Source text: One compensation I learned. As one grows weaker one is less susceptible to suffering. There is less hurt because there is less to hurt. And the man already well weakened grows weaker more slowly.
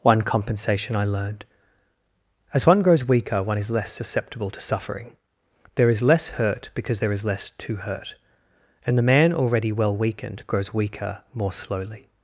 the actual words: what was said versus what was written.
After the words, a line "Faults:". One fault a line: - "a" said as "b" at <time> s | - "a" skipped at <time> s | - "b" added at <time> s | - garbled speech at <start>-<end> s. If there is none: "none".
One compensation I learned. As one grows weaker one is less susceptible to suffering. There is less hurt because there is less to hurt. And the man already well weakened grows weaker more slowly.
Faults:
none